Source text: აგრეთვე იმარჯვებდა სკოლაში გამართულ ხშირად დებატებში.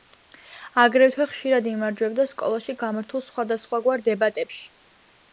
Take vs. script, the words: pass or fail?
fail